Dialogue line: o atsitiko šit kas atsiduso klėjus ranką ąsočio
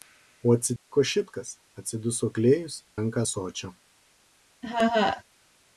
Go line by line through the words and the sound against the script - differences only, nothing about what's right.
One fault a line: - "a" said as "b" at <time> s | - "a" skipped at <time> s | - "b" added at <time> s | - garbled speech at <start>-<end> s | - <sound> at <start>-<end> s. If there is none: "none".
- dropout at 0.8-0.9 s
- laugh at 4.6-5.2 s